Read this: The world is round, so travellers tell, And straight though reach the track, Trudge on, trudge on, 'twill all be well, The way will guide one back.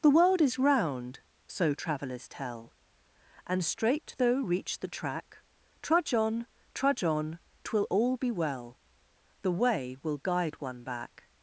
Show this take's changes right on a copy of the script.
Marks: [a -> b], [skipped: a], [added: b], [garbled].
The world is round, so travellers tell, And straight though reach the track, Trudge on, trudge on, 'twill all be well, The way will guide one back.